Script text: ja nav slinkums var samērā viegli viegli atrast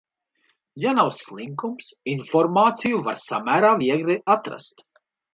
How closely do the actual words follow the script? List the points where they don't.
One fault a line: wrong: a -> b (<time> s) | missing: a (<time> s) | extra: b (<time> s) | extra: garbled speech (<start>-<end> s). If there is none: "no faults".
extra: informāciju (2.1 s)
missing: viegli (4.2 s)